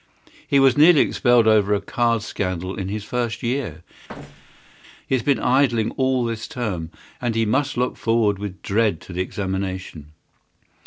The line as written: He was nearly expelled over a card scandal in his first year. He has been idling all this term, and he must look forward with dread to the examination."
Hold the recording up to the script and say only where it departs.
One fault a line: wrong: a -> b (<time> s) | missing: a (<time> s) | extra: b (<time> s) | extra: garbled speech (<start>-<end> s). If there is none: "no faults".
no faults